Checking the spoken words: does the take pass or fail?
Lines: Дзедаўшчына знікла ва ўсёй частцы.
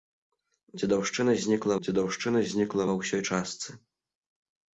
fail